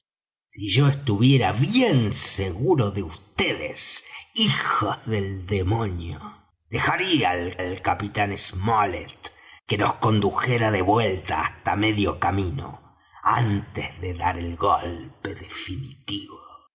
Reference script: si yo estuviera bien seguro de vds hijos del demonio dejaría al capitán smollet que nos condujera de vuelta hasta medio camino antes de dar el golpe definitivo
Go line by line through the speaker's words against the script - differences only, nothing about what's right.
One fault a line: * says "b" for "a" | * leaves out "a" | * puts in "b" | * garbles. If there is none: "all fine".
* puts in "al"